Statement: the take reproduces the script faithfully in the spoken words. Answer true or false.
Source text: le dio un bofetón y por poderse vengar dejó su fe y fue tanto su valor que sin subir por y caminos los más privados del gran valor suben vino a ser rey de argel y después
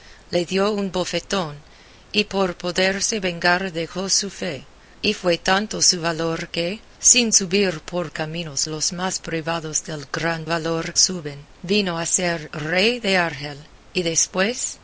true